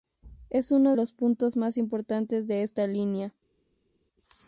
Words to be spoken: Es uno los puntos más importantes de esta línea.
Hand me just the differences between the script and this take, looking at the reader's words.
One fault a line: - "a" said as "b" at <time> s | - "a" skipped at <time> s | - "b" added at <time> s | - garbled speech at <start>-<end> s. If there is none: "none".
none